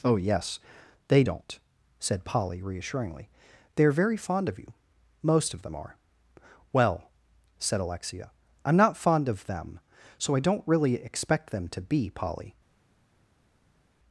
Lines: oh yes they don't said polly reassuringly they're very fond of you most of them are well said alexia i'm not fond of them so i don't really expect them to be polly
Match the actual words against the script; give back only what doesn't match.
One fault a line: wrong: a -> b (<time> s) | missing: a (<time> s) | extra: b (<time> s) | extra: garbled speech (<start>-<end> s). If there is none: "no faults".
no faults